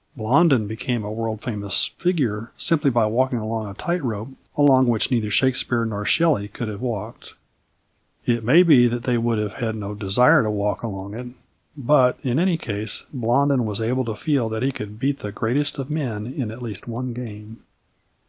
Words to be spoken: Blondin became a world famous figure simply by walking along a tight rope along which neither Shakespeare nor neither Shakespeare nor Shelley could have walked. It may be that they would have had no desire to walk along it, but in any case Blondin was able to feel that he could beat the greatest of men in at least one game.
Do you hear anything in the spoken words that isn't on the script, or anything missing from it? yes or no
yes